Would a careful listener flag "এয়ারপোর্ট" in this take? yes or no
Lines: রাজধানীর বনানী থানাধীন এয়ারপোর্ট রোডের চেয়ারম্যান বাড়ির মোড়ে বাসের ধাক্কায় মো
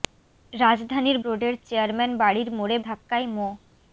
yes